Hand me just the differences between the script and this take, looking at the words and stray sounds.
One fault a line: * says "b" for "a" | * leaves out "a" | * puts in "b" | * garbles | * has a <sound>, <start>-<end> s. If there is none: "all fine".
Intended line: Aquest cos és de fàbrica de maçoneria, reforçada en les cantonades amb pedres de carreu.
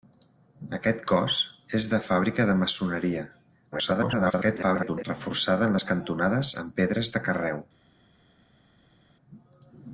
* garbles